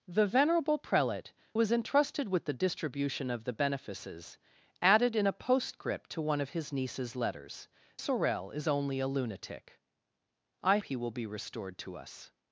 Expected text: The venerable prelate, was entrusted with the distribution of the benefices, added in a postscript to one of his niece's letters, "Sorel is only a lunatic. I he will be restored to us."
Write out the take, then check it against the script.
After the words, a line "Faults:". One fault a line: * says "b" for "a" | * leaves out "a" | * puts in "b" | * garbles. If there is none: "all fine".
The venerable prelate, was entrusted with the distribution of the benefices, added in a postscript to one of his niece's letters, "Sorel is only a lunatic. I he will be restored to us."
Faults:
all fine